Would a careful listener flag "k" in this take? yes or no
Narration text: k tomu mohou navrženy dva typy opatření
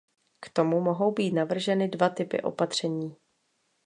no